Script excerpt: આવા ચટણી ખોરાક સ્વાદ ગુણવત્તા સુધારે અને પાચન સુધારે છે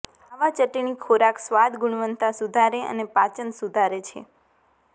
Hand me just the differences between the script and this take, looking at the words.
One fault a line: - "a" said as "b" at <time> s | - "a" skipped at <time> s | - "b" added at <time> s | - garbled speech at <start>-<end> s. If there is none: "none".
none